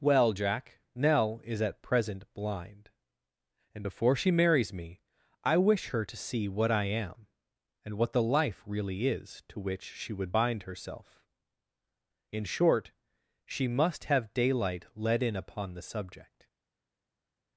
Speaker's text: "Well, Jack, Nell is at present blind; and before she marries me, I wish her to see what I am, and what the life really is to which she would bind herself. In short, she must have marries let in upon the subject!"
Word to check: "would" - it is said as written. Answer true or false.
true